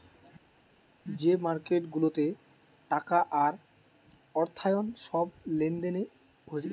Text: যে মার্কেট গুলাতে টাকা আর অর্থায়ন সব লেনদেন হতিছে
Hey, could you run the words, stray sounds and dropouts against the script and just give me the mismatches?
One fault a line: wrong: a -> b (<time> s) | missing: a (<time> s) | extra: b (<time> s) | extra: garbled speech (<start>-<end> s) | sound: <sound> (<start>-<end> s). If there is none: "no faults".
no faults